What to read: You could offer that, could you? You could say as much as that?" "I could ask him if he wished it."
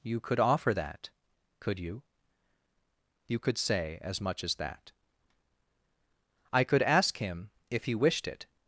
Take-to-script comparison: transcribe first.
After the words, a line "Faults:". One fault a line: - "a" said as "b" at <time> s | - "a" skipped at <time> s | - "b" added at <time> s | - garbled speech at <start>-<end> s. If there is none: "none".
You could offer that, could you? You could say as much as that?" "I could ask him if he wished it."
Faults:
none